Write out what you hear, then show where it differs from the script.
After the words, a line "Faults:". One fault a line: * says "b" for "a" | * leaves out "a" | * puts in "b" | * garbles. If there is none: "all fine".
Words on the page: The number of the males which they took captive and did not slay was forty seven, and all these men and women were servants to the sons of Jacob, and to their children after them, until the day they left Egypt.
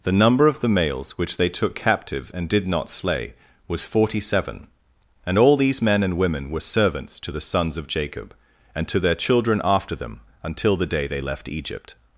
The number of the males which they took captive and did not slay was forty seven, and all these men and women were servants to the sons of Jacob, and to their children after them, until the day they left Egypt.
Faults:
all fine